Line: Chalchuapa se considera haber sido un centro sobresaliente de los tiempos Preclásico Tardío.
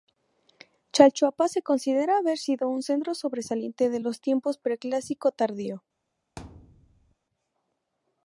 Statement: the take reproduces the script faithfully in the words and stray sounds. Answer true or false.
false